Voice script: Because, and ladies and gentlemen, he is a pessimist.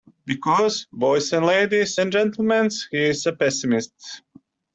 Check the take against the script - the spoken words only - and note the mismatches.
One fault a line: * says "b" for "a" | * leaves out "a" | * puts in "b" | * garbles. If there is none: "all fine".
* puts in "boys"